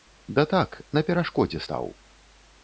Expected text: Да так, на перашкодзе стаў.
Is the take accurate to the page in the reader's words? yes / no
yes